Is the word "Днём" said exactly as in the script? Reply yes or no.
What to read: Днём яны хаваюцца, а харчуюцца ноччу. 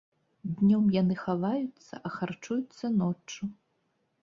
yes